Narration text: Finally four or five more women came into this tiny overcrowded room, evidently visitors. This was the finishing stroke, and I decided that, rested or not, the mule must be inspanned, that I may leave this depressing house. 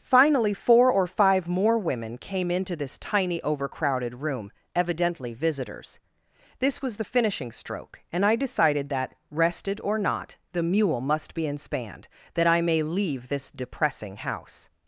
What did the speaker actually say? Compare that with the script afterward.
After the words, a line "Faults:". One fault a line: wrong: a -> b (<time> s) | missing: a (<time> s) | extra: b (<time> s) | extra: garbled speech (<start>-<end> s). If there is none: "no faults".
Finally four or five more women came into this tiny overcrowded room, evidently visitors. This was the finishing stroke, and I decided that, rested or not, the mule must be inspanned, that I may leave this depressing house.
Faults:
no faults